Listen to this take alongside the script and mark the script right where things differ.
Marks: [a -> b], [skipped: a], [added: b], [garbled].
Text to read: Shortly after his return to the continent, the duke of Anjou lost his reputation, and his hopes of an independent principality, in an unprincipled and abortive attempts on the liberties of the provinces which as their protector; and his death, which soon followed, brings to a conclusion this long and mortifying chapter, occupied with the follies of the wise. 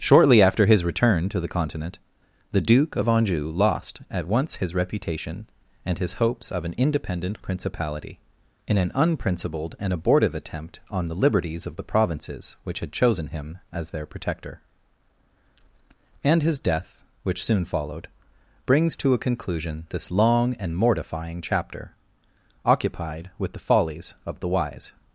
Shortly after his return to the continent, the duke of Anjou lost [added: at once] his reputation, and his hopes of an independent principality, in an unprincipled and abortive [attempts -> attempt] on the liberties of the provinces which [added: had chosen him] as their protector; and his death, which soon followed, brings to a conclusion this long and mortifying chapter, occupied with the follies of the wise.